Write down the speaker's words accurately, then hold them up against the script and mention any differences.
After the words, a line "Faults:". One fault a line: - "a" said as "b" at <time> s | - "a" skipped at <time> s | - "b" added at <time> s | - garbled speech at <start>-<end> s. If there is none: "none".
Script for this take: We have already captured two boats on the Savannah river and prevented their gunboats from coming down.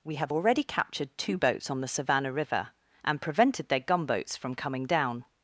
We have already captured two boats on the Savannah river and prevented their gunboats from coming down.
Faults:
none